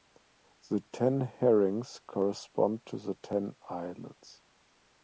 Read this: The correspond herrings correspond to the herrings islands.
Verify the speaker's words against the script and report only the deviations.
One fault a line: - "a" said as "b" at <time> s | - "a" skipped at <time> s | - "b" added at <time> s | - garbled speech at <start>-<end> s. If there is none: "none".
- "correspond" said as "ten" at 0.9 s
- "herrings" said as "ten" at 3.1 s